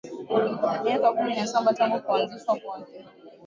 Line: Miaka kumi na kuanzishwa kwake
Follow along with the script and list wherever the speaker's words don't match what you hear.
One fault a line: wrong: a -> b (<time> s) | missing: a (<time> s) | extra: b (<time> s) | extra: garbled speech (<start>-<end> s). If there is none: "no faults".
extra: saba tangu (1.5 s)